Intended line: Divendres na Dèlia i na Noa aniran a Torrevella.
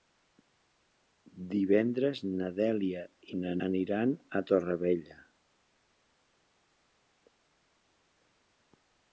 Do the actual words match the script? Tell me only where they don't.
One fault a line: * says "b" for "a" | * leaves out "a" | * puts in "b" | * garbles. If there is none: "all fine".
* leaves out "Noa"